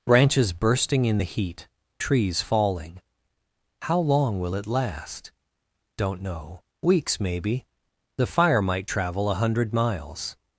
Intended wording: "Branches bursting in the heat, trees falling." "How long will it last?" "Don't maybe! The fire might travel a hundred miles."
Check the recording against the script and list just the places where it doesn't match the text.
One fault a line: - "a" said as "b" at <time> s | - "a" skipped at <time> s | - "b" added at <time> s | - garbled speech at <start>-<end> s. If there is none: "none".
- "know Weeks" added at 6.2 s